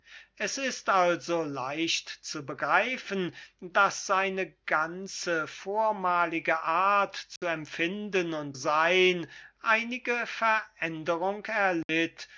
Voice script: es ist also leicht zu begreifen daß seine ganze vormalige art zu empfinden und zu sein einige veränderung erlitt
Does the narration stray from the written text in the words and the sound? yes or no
yes